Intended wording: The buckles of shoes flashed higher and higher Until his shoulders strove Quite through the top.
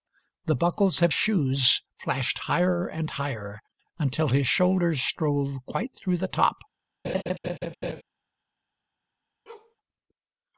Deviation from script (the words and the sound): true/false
true